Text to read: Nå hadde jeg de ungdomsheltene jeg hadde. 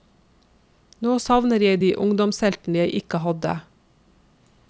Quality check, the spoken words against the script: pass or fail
fail